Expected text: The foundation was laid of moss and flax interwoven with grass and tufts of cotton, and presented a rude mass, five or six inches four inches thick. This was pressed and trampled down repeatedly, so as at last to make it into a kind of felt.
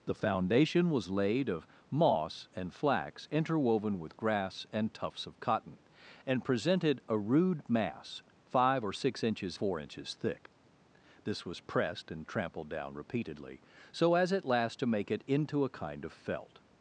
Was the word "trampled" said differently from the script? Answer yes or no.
no